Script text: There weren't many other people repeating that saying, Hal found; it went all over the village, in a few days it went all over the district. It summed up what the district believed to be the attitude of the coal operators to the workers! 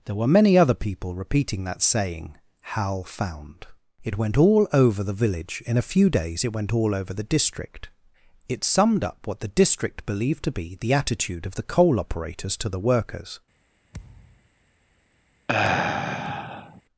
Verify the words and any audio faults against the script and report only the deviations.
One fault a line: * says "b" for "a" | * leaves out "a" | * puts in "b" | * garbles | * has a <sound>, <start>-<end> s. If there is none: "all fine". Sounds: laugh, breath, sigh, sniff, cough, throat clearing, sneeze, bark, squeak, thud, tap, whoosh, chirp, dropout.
* says "were" for "weren't"
* has a thud, 13.9-14.5 s
* has a sigh, 15.5-16.8 s